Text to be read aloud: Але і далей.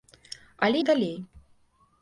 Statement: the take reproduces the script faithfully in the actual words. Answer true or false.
true